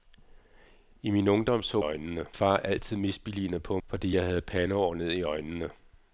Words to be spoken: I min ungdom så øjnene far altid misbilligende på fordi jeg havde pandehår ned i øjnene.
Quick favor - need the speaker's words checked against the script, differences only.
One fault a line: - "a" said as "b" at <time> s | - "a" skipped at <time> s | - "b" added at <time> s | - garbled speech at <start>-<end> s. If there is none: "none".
none